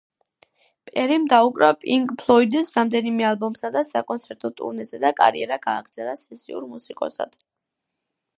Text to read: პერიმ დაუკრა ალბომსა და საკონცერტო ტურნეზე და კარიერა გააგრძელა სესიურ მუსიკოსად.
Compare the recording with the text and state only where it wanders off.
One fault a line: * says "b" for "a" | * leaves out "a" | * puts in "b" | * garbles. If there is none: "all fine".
* puts in "პინკ ფლოიდის რამდენიმე"